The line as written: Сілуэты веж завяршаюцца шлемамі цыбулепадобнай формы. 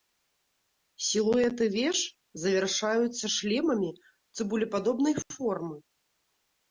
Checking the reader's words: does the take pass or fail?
pass